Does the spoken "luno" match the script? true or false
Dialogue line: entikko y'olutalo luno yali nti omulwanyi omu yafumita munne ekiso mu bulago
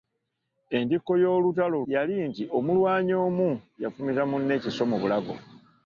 false